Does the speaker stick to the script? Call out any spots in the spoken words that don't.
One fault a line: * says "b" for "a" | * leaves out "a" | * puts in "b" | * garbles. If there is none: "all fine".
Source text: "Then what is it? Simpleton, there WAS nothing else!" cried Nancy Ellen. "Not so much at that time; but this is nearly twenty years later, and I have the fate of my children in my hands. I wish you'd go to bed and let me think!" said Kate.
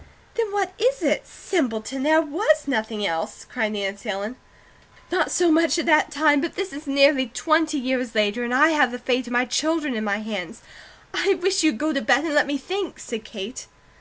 all fine